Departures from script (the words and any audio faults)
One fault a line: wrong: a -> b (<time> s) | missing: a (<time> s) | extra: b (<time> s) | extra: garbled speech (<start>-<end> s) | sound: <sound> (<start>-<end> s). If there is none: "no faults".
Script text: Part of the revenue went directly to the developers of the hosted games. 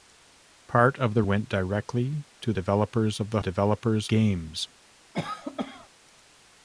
missing: revenue (1.2 s)
missing: the (2.5 s)
wrong: hosted -> developers (3.4 s)
sound: cough (5.1-5.9 s)